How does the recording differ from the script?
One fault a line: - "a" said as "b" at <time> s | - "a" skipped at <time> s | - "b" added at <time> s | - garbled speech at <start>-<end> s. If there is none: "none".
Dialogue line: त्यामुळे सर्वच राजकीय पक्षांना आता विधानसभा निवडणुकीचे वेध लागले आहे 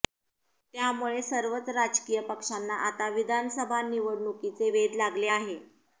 none